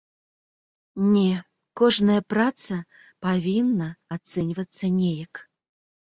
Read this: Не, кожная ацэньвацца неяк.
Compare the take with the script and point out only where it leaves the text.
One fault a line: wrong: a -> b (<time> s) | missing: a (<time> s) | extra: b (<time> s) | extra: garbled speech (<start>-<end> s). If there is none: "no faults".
extra: праца павінна (2.4 s)